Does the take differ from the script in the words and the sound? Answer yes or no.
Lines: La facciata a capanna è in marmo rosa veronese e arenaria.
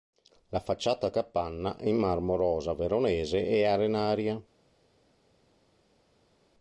no